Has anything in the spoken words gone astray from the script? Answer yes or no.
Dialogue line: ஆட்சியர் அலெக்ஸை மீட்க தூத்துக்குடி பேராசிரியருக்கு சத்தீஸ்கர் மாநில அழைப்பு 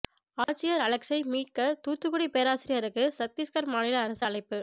yes